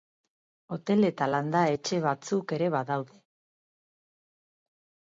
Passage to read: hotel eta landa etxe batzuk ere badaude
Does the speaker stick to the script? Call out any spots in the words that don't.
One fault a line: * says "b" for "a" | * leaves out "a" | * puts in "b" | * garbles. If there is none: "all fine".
all fine